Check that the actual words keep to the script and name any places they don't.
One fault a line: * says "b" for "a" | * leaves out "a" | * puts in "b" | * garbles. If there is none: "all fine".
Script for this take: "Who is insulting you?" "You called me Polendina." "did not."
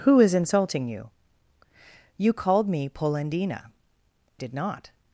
all fine